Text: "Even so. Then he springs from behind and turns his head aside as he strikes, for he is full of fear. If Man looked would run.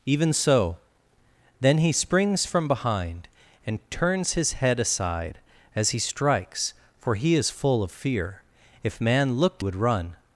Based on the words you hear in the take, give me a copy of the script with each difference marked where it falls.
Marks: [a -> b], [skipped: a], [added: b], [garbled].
"Even so. Then he springs from behind and turns his head aside as he strikes, for he is full of fear. If Man looked would run.